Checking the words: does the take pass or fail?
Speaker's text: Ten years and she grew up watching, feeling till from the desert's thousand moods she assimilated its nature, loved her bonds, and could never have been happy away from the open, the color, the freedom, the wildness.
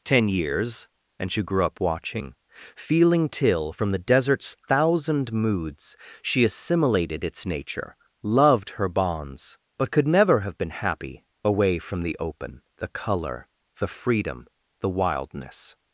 fail